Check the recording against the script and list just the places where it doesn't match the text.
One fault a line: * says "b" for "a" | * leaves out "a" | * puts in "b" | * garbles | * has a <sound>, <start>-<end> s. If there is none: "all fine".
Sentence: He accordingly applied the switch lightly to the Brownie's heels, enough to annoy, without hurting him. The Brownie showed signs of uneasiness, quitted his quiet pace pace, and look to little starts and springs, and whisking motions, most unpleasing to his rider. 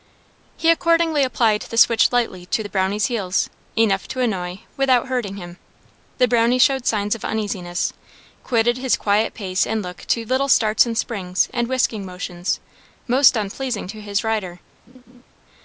* leaves out "pace"
* has a laugh, 14.9-15.2 s